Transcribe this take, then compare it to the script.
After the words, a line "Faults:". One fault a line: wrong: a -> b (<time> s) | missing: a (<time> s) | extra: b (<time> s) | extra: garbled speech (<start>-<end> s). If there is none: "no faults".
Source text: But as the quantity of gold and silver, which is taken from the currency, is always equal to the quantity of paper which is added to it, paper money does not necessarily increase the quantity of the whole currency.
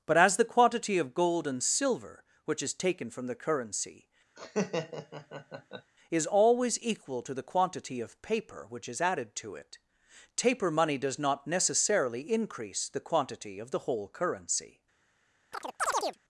But as the quantity of gold and silver, which is taken from the currency, is always equal to the quantity of paper which is added to it, taper money does not necessarily increase the quantity of the whole currency.
Faults:
wrong: paper -> taper (10.3 s)